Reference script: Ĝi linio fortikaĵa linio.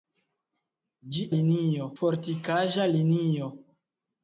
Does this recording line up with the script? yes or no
yes